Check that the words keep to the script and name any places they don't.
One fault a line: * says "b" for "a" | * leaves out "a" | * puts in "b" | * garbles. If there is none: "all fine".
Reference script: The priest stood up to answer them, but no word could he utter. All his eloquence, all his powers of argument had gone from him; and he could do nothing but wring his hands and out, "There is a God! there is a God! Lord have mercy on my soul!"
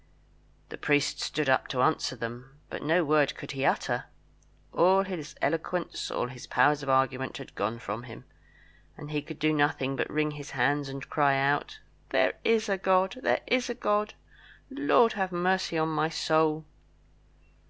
* puts in "cry"